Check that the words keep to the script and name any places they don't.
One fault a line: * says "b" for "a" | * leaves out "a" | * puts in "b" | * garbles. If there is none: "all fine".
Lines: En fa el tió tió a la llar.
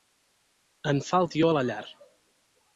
* leaves out "tió"